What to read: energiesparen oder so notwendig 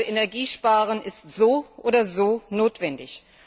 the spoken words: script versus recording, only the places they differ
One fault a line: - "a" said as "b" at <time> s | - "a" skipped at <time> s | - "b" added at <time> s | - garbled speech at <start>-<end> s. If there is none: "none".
- "ist so" added at 1.0 s